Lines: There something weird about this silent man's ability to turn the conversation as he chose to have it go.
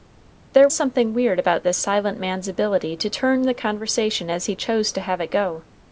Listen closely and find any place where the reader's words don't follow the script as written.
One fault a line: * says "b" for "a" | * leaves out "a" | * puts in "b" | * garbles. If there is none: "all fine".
all fine